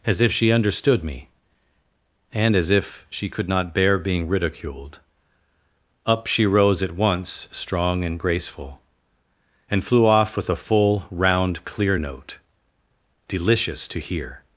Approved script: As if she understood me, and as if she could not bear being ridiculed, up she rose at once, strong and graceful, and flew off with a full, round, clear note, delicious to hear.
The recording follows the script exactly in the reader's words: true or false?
true